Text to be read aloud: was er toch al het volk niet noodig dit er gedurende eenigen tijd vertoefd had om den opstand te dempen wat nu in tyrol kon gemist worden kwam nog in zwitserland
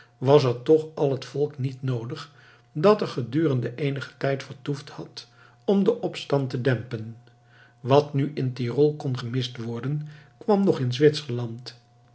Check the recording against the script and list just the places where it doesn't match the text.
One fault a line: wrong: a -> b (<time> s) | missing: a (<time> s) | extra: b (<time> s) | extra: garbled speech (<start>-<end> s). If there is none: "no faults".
wrong: dit -> dat (2.7 s)